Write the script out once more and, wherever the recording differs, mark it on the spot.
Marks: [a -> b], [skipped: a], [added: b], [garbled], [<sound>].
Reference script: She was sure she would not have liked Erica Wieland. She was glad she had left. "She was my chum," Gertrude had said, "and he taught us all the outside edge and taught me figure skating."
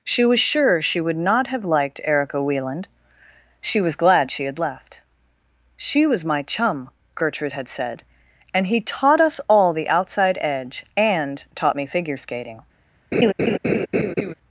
She was sure she would not have liked Erica Wieland. She was glad she had left. "She was my chum," Gertrude had said, "and he taught us all the outside edge and taught me figure skating." [laugh]